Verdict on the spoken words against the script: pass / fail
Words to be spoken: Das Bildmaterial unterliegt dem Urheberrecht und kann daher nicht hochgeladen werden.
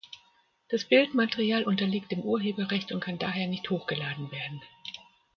pass